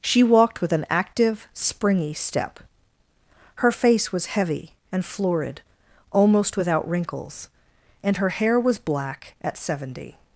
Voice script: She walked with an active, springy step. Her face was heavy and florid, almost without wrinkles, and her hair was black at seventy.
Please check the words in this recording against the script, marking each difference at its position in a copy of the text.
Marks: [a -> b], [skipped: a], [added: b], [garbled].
She walked with an active, springy step. Her face was heavy and florid, almost without wrinkles, and her hair was black at seventy.